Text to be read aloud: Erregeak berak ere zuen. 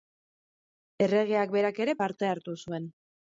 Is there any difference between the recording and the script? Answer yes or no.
yes